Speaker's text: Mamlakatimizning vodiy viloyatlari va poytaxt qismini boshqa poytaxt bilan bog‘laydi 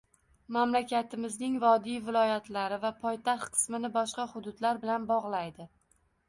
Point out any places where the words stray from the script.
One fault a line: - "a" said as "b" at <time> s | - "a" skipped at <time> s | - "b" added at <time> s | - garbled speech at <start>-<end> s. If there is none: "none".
- "poytaxt" said as "hududlar" at 4.4 s